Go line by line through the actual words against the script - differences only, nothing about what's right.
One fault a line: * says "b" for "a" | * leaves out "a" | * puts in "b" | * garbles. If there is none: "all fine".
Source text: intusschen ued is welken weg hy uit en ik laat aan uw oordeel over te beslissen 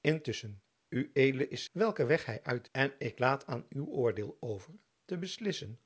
all fine